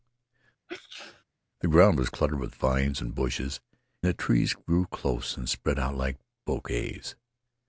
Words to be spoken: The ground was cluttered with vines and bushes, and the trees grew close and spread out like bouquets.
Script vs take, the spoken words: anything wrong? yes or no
yes